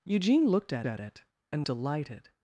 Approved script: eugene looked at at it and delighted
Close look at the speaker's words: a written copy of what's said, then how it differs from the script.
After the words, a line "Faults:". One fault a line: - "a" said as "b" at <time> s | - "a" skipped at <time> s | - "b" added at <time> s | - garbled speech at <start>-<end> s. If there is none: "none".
eugene looked at at it and delighted
Faults:
none